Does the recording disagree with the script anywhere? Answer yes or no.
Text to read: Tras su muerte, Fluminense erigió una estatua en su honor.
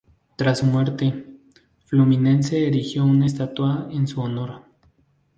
no